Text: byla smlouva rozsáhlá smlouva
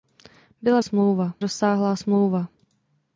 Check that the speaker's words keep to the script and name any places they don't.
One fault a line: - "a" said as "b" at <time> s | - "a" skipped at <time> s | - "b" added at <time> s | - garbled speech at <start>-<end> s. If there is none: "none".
none